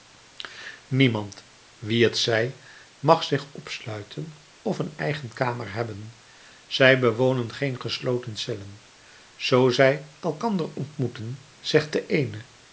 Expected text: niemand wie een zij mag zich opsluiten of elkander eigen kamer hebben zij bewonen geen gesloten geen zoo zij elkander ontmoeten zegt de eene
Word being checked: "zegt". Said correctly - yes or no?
yes